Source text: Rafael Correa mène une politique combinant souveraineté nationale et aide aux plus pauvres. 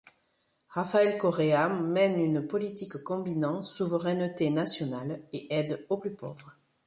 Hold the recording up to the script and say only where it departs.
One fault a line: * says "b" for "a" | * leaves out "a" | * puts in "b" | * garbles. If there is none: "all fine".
all fine